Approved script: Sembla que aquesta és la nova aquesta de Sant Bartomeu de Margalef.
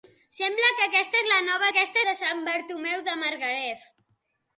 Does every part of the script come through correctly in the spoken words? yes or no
yes